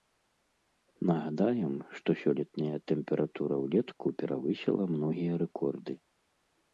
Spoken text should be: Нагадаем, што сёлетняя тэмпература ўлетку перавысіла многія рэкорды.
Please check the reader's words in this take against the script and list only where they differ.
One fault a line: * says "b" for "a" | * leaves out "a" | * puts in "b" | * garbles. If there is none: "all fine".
all fine